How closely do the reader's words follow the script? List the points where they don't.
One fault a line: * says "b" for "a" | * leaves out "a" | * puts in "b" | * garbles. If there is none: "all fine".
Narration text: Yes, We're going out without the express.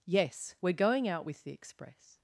* says "with" for "without"